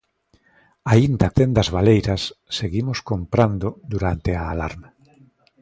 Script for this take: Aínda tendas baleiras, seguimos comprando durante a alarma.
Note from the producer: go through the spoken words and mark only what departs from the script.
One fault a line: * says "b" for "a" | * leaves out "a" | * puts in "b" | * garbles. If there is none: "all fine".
all fine